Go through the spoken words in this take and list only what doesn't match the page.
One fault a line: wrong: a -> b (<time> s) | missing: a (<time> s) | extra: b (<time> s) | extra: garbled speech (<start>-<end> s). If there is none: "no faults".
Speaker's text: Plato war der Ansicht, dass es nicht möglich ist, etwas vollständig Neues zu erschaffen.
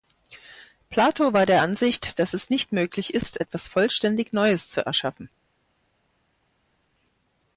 no faults